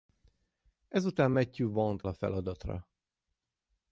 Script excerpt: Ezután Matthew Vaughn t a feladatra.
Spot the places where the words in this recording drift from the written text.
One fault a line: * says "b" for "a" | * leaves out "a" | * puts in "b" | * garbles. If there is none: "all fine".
all fine